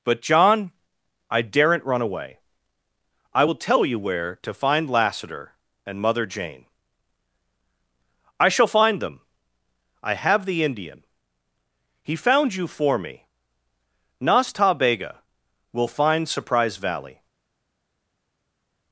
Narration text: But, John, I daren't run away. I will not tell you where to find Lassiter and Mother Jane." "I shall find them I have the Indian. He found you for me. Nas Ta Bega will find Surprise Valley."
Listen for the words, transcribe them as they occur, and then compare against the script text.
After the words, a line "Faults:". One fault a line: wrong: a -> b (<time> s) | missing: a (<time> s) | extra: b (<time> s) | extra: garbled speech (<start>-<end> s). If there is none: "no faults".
But, John, I daren't run away. I will tell you where to find Lassiter and Mother Jane." "I shall find them I have the Indian. He found you for me. Nas Ta Bega will find Surprise Valley."
Faults:
missing: not (3.5 s)